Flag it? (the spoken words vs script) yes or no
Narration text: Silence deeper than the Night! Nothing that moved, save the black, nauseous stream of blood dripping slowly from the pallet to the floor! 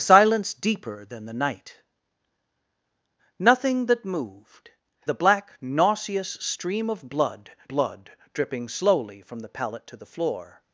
yes